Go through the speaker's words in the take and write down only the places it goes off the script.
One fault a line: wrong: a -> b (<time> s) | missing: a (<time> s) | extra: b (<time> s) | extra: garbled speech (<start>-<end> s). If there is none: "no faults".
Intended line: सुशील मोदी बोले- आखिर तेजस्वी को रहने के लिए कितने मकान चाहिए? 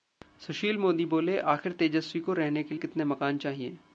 missing: लिए (2.8 s)